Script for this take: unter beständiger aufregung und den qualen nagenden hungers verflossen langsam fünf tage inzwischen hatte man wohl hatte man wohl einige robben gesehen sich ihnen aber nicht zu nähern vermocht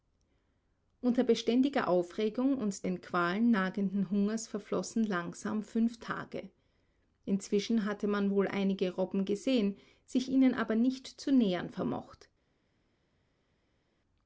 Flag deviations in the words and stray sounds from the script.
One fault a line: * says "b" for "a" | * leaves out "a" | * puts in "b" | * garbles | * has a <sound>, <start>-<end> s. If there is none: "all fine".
* leaves out "hatte man wohl"